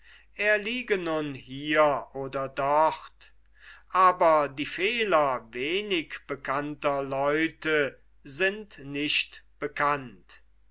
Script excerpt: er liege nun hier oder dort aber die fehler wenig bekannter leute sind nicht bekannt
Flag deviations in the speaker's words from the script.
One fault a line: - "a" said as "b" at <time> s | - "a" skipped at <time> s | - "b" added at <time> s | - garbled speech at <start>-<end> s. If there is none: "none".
none